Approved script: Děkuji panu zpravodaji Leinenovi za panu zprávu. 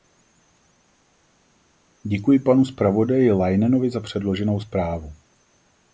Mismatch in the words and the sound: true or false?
true